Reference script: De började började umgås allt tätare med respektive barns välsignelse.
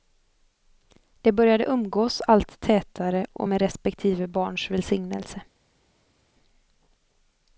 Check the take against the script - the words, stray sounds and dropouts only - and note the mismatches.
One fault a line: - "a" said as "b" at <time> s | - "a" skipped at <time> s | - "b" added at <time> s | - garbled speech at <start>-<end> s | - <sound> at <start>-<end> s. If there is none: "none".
- "började" skipped at 1.6 s
- "och" added at 3.3 s